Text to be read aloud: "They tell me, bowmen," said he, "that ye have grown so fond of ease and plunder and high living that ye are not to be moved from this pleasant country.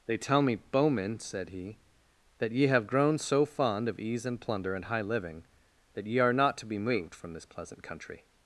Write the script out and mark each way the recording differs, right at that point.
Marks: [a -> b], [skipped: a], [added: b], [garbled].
"They tell me, bowmen," said he, "that ye have grown so fond of ease and plunder and high living that ye are not to be moved from this pleasant country.